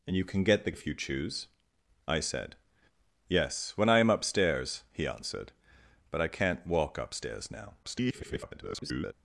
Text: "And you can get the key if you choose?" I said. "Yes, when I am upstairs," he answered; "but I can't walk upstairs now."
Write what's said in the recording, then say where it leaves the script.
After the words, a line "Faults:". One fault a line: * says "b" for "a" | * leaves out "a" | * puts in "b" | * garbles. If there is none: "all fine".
"And you can get the if you choose?" I said. "Yes, when I am upstairs," he answered; "but I can't walk upstairs now." [garbled]
Faults:
* leaves out "key"
* garbles